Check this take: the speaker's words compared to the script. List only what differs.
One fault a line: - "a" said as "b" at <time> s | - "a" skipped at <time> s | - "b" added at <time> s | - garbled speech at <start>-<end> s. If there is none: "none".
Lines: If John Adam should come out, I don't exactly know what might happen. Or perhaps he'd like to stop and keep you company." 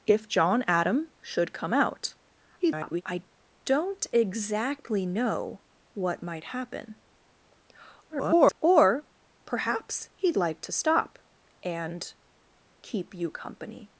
- garbled speech at 2.6-3.0 s
- garbled speech at 8.1-8.6 s